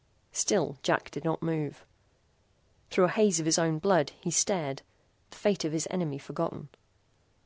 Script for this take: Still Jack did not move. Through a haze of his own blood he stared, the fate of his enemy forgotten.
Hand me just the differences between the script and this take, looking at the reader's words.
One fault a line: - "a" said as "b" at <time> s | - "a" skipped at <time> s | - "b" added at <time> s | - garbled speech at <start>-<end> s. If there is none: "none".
none